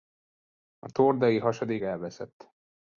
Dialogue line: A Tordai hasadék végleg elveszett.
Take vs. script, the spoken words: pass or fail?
fail